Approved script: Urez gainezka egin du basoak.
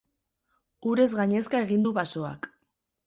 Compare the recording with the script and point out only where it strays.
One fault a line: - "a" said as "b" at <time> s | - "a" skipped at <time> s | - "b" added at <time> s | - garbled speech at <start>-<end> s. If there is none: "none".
none